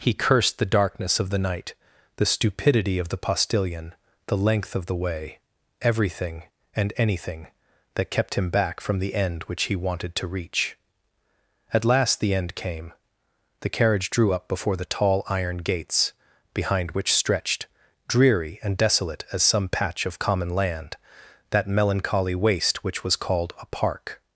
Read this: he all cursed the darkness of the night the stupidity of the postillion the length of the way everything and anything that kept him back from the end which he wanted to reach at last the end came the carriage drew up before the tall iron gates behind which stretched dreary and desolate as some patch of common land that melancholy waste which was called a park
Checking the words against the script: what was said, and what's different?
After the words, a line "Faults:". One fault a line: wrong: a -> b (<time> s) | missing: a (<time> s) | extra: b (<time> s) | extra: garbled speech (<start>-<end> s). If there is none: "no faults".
he cursed the darkness of the night the stupidity of the postillion the length of the way everything and anything that kept him back from the end which he wanted to reach at last the end came the carriage drew up before the tall iron gates behind which stretched dreary and desolate as some patch of common land that melancholy waste which was called a park
Faults:
missing: all (0.1 s)